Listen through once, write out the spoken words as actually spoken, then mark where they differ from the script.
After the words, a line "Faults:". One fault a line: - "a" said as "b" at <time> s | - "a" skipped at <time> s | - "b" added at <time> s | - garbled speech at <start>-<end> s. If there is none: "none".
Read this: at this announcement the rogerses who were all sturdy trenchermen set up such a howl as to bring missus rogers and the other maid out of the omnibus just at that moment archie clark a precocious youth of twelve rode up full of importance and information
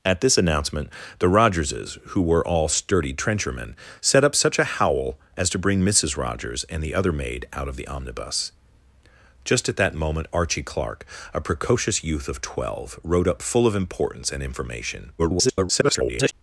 at this announcement the rogerses who were all sturdy trenchermen set up such a howl as to bring missus rogers and the other maid out of the omnibus just at that moment archie clark a precocious youth of twelve rode up full of importance and information [garbled]
Faults:
- garbled speech at 15.2-16.3 s